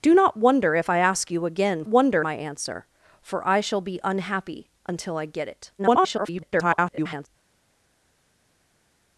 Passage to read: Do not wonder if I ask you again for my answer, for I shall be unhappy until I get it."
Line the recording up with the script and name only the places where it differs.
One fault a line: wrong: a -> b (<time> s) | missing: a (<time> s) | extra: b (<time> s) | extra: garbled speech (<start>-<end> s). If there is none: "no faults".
wrong: for -> wonder (1.9 s)
extra: garbled speech (5.8-7.3 s)